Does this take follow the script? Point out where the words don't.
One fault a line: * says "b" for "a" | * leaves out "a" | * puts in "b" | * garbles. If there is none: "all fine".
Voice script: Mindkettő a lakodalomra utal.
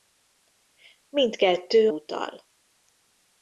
* leaves out "a lakodalomra"